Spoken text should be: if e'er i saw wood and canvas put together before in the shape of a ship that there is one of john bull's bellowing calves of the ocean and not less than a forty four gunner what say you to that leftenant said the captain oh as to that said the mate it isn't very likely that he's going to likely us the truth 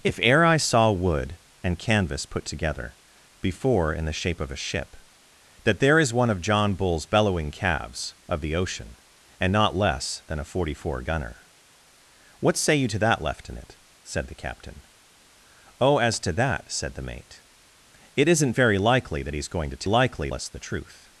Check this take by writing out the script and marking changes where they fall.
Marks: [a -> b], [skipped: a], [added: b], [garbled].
if e'er i saw wood and canvas put together before in the shape of a ship that there is one of john bull's bellowing calves of the ocean and not less than a forty four gunner what say you to that leftenant said the captain oh as to that said the mate it isn't very likely that he's going to likely us the truth